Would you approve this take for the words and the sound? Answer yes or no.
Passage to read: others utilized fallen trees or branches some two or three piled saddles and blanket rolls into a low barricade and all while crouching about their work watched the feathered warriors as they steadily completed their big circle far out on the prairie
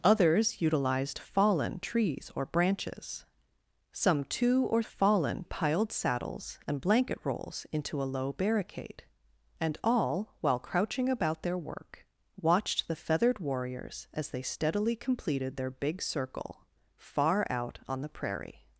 no